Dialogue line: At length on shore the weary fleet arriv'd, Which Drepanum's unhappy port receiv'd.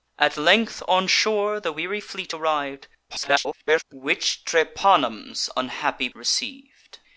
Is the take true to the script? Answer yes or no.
no